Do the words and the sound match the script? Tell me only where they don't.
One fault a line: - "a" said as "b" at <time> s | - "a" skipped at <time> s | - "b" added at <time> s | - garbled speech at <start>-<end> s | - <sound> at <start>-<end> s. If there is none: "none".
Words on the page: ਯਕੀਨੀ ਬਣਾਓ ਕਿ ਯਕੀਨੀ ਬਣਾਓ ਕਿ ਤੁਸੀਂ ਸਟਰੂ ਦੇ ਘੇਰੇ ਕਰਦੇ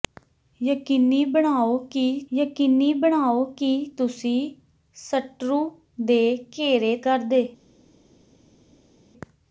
none